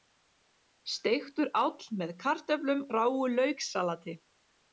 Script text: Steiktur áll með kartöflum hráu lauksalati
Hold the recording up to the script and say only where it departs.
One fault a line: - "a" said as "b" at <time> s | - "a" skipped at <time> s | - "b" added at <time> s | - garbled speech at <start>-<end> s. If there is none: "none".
none